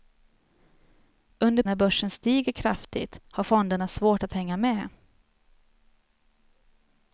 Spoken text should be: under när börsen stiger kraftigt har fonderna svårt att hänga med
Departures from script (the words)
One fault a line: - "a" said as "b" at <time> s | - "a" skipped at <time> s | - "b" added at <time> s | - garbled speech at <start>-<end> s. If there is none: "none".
none